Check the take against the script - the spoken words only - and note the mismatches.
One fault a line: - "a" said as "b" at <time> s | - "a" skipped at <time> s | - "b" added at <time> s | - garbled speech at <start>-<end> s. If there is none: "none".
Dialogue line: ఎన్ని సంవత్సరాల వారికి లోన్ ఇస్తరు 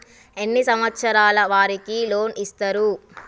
none